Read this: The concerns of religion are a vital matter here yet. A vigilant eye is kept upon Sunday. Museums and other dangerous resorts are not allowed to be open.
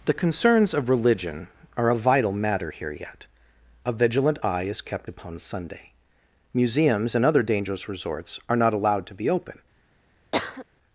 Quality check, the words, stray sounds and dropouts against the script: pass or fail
fail